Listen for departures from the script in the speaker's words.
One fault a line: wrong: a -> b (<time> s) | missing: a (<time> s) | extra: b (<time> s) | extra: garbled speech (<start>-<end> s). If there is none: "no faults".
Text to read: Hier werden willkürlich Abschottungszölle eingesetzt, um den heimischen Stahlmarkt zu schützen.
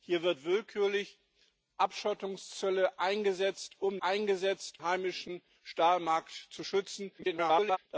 wrong: den -> eingesetzt (4.0 s)
extra: garbled speech (7.2-7.8 s)